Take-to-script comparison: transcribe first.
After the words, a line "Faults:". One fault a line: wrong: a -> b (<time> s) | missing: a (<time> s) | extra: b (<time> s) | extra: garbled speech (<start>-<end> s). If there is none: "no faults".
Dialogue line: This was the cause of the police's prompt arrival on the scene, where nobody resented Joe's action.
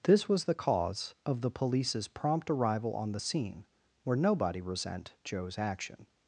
This was the cause of the police's prompt arrival on the scene, where nobody resent Joe's action.
Faults:
wrong: resented -> resent (4.6 s)